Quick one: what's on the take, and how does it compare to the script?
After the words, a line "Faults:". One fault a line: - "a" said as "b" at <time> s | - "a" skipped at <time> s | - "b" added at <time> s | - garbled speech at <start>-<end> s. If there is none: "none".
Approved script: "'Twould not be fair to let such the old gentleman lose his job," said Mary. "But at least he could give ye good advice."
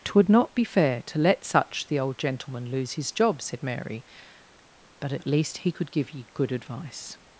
"'Twould not be fair to let such the old gentleman lose his job," said Mary. "But at least he could give ye good advice."
Faults:
none